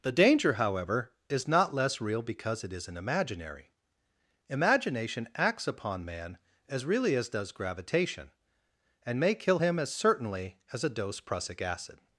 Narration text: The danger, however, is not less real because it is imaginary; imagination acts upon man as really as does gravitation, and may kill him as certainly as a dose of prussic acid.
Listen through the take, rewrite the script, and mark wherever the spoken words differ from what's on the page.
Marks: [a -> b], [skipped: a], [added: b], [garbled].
The danger, however, is not less real because it [is -> isn't] imaginary; imagination acts upon man as really as does gravitation, and may kill him as certainly as a dose [skipped: of] prussic acid.